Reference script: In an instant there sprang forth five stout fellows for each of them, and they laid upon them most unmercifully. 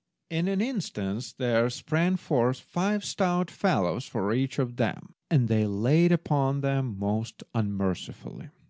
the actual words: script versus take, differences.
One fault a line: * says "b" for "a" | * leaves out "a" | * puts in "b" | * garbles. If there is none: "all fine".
all fine